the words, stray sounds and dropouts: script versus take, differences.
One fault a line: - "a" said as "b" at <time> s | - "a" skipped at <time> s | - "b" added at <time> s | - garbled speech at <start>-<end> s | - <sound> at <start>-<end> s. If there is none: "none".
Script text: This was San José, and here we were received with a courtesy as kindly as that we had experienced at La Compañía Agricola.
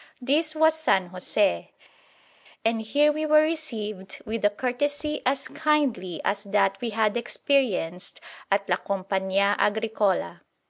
none